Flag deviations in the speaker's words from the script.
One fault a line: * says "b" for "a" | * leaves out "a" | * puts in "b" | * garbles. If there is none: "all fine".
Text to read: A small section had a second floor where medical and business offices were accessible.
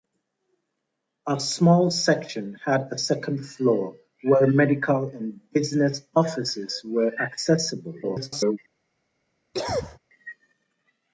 * garbles